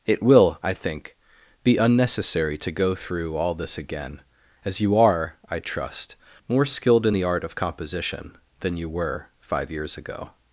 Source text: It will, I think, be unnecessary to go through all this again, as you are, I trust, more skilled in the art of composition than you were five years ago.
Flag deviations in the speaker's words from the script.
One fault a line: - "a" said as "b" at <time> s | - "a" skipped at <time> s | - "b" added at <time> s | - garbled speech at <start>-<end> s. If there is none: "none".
none